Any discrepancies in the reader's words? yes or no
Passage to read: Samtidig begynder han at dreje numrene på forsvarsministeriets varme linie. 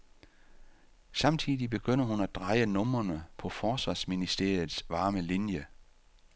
yes